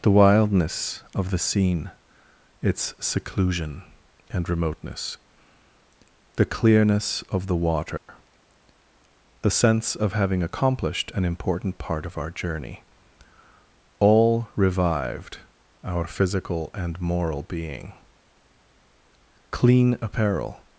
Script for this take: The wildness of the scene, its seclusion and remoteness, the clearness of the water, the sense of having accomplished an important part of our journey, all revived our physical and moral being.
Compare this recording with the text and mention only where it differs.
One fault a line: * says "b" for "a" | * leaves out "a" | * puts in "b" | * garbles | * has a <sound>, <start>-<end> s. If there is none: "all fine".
* has a dropout, 8.0-8.1 s
* puts in "Clean apparel"